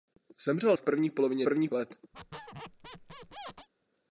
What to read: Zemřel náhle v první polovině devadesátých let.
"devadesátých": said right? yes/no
no